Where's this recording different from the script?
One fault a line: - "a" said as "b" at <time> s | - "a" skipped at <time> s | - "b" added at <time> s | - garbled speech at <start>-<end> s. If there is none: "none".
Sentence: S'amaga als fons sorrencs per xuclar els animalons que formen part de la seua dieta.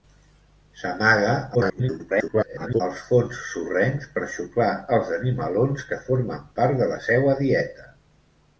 - garbled speech at 1.5-2.8 s